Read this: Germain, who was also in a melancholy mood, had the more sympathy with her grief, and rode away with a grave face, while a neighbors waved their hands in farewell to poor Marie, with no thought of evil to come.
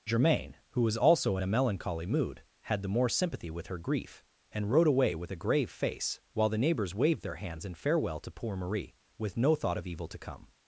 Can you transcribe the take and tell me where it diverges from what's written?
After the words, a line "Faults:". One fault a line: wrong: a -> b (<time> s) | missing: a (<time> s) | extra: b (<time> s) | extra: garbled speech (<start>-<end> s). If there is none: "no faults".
Germain, who was also in a melancholy mood, had the more sympathy with her grief, and rode away with a grave face, while the neighbors waved their hands in farewell to poor Marie, with no thought of evil to come.
Faults:
wrong: a -> the (6.5 s)